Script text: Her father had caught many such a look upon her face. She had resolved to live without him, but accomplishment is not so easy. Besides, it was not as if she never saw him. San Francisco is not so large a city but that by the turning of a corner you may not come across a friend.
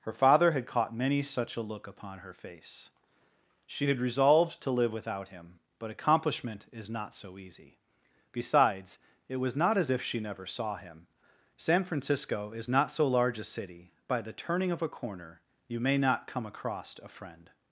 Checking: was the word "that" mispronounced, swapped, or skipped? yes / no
yes